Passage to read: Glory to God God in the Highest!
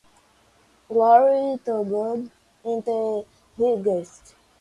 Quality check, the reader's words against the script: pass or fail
fail